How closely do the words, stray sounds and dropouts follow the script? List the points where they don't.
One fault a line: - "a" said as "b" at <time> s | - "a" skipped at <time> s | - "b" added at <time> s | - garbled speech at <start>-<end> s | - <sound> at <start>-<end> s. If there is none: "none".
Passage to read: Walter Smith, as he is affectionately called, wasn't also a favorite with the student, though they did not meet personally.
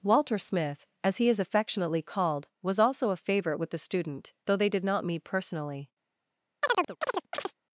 - "wasn't" said as "was" at 2.6 s
- chirp at 6.6-7.5 s